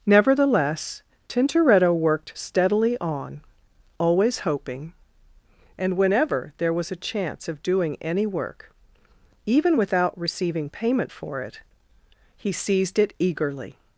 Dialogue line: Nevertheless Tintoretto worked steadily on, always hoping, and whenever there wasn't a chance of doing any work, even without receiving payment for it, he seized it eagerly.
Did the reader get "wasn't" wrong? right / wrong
wrong